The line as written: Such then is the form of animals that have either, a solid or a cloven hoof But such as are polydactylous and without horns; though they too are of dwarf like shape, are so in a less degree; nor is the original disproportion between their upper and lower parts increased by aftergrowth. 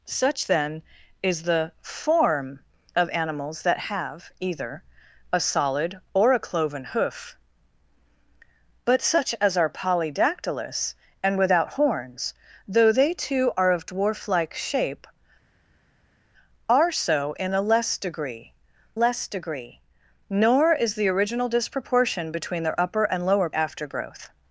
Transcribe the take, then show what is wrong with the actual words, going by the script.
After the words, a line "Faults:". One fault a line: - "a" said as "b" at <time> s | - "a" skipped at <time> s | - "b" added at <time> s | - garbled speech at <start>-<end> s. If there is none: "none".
Such then is the form of animals that have either, a solid or a cloven hoof But such as are polydactylous and without horns; though they too are of dwarf like shape, are so in a less degree less degree; nor is the original disproportion between their upper and lower aftergrowth.
Faults:
- "less degree" added at 18.9 s
- "parts increased by" skipped at 23.5 s